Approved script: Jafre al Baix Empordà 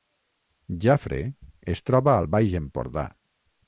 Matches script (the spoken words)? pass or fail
fail